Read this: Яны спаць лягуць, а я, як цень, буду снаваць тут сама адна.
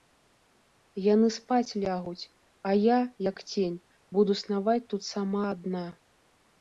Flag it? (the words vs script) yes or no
no